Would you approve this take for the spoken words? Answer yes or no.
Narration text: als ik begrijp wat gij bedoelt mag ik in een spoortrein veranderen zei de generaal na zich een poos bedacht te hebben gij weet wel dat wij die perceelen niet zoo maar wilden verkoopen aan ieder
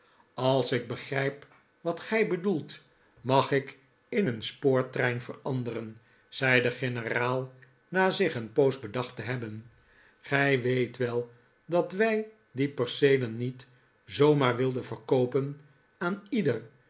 yes